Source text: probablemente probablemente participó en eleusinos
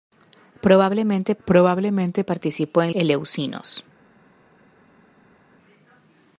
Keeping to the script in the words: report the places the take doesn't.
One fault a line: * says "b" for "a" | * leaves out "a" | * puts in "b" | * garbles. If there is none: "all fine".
all fine